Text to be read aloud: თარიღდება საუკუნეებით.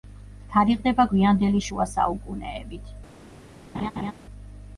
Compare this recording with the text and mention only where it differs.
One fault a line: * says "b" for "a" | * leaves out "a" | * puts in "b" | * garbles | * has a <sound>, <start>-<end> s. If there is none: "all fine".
* puts in "გვიანდელი შუა"
* has a laugh, 3.7-4.1 s